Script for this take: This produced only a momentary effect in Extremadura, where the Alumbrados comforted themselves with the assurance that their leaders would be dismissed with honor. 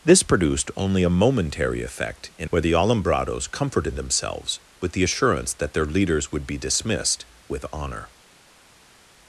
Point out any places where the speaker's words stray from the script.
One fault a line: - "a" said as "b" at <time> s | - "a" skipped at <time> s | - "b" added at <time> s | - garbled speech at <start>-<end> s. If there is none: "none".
- "Extremadura" skipped at 2.5 s